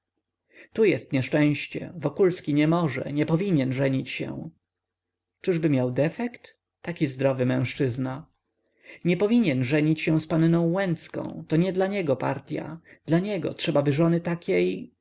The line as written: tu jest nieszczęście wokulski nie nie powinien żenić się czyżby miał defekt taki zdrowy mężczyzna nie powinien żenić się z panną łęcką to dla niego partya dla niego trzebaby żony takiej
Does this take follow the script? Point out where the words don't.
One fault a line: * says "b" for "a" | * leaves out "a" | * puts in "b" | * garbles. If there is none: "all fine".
* puts in "może"
* puts in "nie"